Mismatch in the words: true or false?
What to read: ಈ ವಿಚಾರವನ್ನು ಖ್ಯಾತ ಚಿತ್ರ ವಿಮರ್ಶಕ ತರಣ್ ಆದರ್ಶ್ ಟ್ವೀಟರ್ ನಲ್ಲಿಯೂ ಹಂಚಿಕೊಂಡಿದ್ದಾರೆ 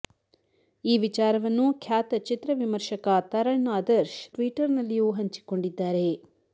false